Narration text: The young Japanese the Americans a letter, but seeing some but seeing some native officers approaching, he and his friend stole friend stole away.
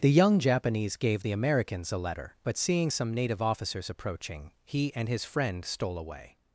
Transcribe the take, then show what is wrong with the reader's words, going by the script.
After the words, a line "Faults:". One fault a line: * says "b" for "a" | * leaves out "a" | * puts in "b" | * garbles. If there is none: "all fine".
The young Japanese gave the Americans a letter, but seeing some native officers approaching, he and his friend stole away.
Faults:
* puts in "gave"
* leaves out "but seeing some"
* leaves out "friend stole"